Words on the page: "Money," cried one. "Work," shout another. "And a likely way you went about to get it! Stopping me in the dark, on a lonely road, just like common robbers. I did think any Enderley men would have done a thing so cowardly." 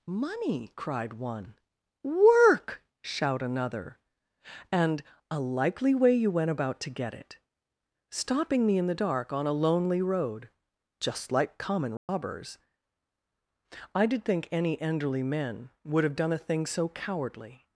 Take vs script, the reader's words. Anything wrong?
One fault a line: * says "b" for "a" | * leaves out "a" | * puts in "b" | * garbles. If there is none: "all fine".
all fine